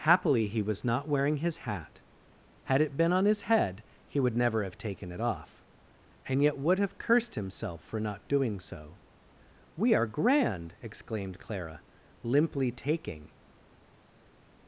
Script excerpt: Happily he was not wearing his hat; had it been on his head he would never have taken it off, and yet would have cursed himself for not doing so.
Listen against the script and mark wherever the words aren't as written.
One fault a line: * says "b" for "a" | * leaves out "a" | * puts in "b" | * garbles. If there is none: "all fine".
* puts in "We are grand exclaimed Clara limply taking"